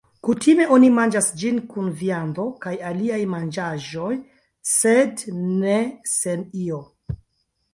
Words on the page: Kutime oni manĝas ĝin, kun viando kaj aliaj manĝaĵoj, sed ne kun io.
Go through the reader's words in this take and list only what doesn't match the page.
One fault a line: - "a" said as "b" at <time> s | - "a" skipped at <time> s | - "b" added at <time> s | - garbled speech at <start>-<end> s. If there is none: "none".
- "kun" said as "sen" at 6.2 s